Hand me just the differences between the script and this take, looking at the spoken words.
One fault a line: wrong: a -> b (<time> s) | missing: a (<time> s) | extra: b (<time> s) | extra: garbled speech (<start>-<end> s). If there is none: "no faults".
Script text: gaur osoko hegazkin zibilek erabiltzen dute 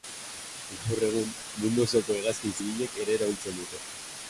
extra: egun mundu (1.1 s)
extra: ere (3.1 s)